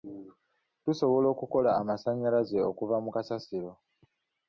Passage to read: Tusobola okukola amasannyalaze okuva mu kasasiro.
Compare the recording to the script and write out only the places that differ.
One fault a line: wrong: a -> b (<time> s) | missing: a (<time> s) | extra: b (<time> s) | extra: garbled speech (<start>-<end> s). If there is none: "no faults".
no faults